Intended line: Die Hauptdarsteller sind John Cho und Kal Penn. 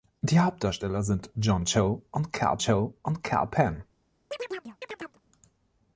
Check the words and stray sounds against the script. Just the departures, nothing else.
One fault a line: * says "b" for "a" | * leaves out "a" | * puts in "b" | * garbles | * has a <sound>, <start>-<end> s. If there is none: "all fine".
* puts in "Cho und Kal"
* has a chirp, 4.3-5.2 s